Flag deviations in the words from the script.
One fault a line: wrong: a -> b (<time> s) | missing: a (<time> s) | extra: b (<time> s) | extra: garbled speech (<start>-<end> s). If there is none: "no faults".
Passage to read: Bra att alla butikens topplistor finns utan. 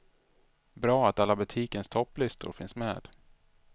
wrong: utan -> med (2.8 s)